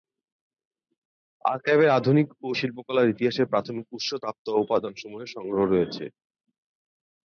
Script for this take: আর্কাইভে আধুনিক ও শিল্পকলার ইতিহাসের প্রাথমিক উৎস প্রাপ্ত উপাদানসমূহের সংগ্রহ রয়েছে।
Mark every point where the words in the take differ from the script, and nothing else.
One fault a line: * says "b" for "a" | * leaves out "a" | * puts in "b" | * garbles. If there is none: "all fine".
all fine